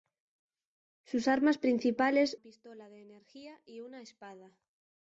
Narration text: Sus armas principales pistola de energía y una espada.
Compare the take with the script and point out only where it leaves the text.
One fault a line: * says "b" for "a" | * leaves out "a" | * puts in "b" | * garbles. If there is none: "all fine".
all fine